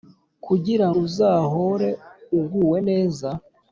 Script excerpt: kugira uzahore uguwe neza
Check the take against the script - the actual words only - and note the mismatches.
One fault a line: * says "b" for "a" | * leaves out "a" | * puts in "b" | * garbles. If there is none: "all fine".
all fine